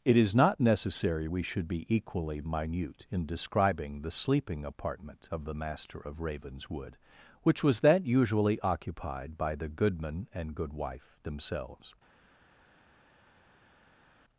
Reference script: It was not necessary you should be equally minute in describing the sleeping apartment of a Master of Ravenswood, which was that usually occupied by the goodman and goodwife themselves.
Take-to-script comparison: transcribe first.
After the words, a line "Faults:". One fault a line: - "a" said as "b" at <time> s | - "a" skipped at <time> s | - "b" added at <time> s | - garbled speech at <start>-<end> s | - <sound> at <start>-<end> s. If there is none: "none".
It is not necessary we should be equally minute in describing the sleeping apartment of the Master of Ravenswood, which was that usually occupied by the goodman and goodwife themselves.
Faults:
- "was" said as "is" at 0.2 s
- "you" said as "we" at 1.2 s
- "a" said as "the" at 5.4 s